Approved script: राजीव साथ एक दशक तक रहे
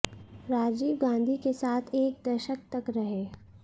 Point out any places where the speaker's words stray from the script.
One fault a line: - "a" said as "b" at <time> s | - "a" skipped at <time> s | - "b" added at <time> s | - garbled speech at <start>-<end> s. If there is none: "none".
- "गांधी के" added at 1.0 s